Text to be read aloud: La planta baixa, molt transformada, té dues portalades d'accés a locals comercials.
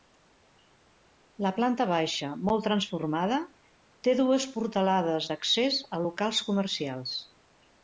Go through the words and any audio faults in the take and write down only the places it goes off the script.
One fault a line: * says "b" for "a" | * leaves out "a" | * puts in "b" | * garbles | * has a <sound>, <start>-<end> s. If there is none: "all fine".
all fine